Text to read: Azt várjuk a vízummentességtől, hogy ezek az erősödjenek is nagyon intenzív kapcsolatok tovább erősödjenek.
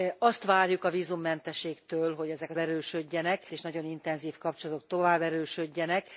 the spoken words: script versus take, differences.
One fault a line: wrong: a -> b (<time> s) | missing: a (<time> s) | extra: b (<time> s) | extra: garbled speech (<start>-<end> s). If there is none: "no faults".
no faults